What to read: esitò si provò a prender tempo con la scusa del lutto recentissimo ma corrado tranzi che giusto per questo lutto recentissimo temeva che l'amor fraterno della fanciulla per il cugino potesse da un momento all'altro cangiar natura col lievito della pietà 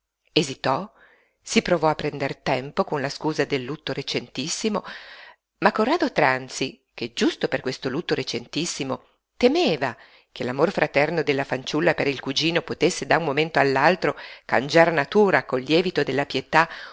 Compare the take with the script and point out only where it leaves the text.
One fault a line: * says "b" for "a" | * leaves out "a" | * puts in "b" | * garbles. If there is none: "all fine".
all fine